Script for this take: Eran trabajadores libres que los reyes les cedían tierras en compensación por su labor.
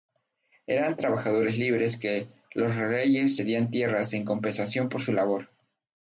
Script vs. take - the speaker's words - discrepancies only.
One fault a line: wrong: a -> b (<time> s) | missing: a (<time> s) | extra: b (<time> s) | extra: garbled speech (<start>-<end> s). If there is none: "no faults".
missing: les (3.4 s)